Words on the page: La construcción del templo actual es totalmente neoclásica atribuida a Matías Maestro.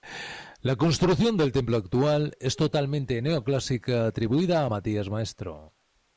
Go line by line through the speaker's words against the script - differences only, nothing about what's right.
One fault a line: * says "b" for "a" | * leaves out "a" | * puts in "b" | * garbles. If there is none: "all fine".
all fine